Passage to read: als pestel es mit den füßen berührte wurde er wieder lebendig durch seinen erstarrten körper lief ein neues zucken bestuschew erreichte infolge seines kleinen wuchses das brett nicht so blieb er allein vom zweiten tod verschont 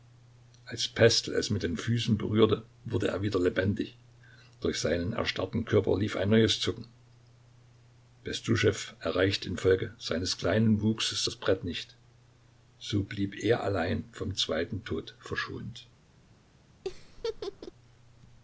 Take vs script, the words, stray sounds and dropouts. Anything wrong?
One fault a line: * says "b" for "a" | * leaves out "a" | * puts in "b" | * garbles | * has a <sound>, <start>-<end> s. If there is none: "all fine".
* has a laugh, 16.8-17.7 s